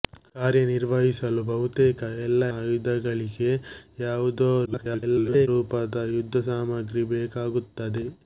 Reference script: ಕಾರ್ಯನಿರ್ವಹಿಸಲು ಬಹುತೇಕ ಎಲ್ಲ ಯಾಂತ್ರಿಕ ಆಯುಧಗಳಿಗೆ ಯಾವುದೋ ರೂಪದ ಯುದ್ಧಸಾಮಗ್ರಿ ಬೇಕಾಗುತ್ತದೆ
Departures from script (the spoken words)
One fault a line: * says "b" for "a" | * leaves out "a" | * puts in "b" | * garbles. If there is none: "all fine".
* leaves out "ಯಾಂತ್ರಿಕ"
* garbles